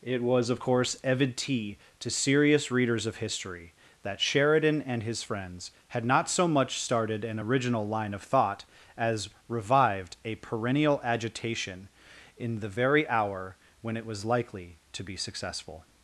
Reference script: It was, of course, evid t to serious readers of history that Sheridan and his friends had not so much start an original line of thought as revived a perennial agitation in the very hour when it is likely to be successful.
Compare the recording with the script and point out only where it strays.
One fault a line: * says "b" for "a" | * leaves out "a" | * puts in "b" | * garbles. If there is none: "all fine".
* says "started" for "start"
* says "was" for "is"